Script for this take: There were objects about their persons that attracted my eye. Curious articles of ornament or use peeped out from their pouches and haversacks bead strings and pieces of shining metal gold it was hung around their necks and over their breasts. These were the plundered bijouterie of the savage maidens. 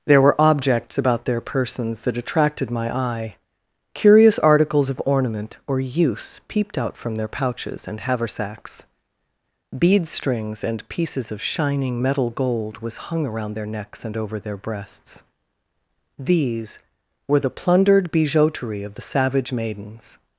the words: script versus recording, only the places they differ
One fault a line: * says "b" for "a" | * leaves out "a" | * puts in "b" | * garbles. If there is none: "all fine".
* leaves out "it"